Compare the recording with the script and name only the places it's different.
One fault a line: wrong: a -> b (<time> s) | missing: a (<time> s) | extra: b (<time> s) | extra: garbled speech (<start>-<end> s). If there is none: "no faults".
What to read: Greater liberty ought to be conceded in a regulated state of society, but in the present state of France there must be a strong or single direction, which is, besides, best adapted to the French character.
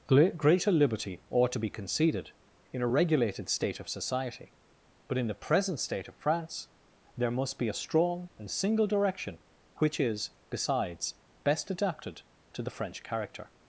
wrong: or -> and (8.4 s)